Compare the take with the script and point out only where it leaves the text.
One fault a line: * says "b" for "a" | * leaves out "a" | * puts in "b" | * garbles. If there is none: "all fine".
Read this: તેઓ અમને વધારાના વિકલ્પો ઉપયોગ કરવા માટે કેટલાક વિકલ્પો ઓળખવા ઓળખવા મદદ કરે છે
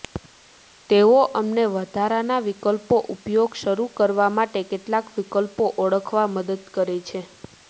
* puts in "શરૂ"
* leaves out "ઓળખવા"